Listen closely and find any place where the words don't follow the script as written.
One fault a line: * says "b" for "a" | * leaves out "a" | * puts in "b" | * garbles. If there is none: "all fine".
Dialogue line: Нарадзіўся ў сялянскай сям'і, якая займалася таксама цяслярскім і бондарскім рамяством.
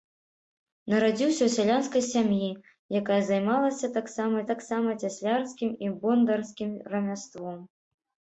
* puts in "таксама"